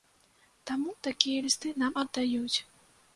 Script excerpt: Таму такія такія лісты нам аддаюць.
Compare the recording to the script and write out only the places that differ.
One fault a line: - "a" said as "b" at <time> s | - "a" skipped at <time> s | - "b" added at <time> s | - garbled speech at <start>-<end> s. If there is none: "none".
- "такія" skipped at 1.4 s